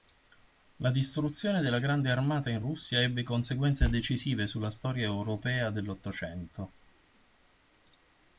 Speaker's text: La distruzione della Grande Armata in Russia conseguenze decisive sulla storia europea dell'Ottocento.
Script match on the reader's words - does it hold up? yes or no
no